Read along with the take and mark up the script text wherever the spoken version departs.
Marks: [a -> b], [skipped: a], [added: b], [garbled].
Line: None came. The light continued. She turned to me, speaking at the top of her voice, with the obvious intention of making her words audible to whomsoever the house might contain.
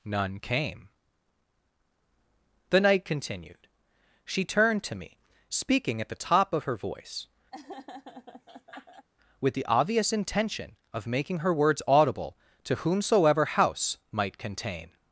None came. The [light -> night] continued. She turned to me, speaking at the top of her voice, with the obvious intention of making her words audible to whomsoever [skipped: the] house might contain.